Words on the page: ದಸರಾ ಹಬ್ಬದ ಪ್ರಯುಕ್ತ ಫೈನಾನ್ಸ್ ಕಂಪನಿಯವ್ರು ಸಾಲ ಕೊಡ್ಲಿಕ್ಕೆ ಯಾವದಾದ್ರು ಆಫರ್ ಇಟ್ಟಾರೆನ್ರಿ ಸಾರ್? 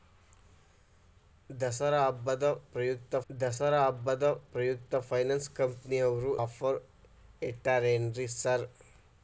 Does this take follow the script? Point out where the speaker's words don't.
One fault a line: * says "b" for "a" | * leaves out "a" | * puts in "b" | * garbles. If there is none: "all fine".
* says "ದಸರಾ ಹಬ್ಬದ ಪ್ರಯುಕ್ತ ಫೈನಾನ್ಸ್ ಕಂಪನಿಯವ್ರು" for "ಫೈನಾನ್ಸ್ ಕಂಪನಿಯವ್ರು ಸಾಲ ಕೊಡ್ಲಿಕ್ಕೆ ಯಾವದಾದ್ರು"